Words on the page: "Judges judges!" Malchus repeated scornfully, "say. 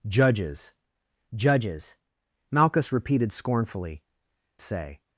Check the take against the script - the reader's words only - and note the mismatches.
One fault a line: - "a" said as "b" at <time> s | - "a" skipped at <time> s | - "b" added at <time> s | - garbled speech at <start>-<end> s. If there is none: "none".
none